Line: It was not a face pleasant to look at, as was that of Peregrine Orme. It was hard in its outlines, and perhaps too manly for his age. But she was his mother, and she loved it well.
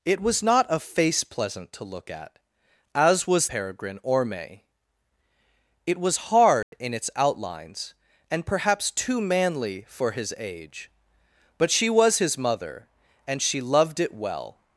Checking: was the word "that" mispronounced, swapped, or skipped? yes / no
yes